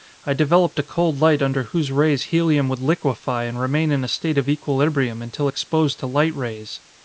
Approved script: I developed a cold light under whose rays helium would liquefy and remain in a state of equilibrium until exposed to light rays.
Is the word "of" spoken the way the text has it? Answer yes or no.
yes